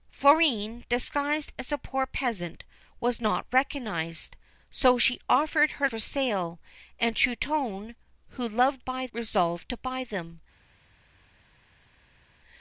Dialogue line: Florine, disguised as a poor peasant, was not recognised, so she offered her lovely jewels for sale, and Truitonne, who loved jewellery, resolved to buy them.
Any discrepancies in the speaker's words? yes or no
yes